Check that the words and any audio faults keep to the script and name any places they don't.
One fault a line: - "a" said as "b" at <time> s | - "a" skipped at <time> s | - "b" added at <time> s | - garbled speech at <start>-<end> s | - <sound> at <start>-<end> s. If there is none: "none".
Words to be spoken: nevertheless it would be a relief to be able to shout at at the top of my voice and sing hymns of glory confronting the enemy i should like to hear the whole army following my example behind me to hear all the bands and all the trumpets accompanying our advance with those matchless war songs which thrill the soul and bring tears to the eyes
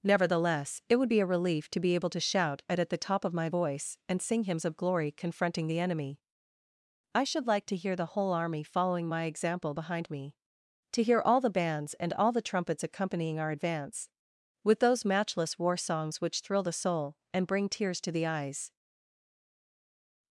none